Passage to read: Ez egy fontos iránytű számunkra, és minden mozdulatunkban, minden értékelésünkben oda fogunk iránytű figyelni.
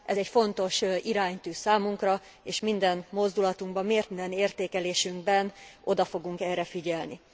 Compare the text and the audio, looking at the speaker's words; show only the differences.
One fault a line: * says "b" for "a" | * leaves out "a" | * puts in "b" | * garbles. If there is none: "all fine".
* says "erre" for "iránytű"